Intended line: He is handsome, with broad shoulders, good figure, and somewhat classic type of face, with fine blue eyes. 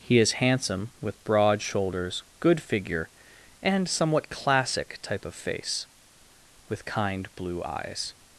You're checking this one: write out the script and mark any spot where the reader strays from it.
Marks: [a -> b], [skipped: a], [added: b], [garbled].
He is handsome, with broad shoulders, good figure, and somewhat classic type of face, with [fine -> kind] blue eyes.